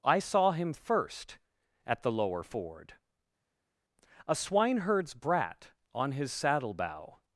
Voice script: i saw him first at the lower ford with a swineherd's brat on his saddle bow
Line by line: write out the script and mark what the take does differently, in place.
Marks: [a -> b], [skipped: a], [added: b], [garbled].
i saw him first at the lower ford [skipped: with] a swineherd's brat on his saddle bow